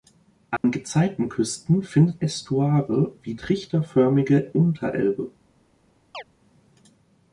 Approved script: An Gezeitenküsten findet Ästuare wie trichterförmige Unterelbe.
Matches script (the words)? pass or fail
pass